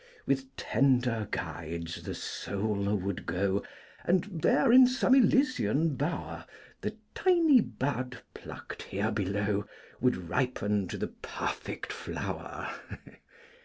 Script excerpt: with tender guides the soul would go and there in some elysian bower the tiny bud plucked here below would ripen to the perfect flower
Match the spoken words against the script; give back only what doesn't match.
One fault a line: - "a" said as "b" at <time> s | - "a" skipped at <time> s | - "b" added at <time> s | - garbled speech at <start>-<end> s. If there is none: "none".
none